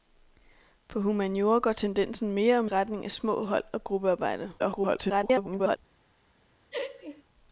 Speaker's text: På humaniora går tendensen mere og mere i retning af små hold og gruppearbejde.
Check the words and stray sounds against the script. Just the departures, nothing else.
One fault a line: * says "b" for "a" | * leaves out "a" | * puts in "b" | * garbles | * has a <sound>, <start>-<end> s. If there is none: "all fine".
* leaves out "mere"
* garbles
* has a laugh, 6.7-7.2 s